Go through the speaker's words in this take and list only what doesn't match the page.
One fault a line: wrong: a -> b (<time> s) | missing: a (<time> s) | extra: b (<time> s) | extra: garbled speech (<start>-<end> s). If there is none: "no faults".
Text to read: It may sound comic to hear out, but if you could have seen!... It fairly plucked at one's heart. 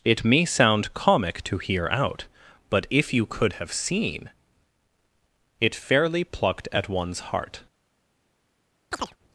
no faults